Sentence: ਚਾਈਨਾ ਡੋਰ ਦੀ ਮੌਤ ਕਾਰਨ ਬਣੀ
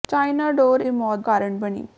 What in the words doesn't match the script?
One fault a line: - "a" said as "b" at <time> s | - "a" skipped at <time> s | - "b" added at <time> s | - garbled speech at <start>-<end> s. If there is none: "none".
none